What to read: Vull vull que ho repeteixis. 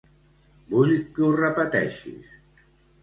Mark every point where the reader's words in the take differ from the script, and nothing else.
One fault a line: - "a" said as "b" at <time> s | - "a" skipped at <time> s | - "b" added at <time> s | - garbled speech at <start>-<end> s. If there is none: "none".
- "vull" skipped at 0.9 s